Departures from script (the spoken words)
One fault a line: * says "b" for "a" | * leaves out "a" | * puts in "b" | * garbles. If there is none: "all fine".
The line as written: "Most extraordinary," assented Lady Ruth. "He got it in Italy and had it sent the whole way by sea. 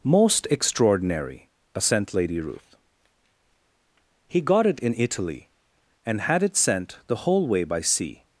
* says "assent" for "assented"